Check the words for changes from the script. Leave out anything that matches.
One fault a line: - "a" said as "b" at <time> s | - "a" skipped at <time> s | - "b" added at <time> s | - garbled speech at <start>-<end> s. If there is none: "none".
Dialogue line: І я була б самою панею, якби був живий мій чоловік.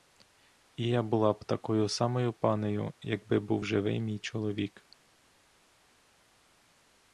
- "такою" added at 1.4 s